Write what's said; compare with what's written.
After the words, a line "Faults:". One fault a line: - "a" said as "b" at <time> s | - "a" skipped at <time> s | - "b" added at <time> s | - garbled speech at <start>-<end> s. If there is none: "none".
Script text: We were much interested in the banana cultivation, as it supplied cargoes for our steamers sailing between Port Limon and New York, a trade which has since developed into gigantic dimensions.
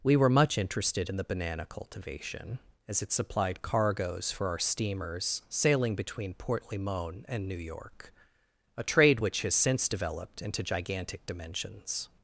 We were much interested in the banana cultivation, as it supplied cargoes for our steamers sailing between Port Limon and New York, a trade which has since developed into gigantic dimensions.
Faults:
none